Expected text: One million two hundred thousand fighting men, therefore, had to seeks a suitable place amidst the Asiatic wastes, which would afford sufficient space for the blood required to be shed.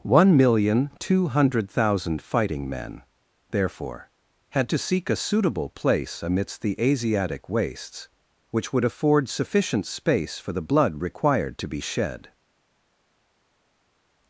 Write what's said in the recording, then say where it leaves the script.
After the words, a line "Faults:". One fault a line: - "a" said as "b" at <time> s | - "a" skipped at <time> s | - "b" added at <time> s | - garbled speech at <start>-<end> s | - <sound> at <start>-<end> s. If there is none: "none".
One million two hundred thousand fighting men, therefore, had to seek a suitable place amidst the Asiatic wastes, which would afford sufficient space for the blood required to be shed.
Faults:
- "seeks" said as "seek" at 4.8 s